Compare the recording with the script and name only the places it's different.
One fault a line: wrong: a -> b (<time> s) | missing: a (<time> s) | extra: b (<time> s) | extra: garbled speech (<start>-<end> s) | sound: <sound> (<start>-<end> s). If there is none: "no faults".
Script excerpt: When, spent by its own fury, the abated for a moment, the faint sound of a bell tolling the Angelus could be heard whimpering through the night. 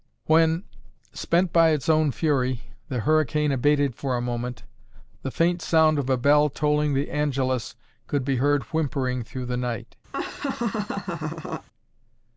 extra: hurricane (3.0 s)
sound: laugh (10.1-11.7 s)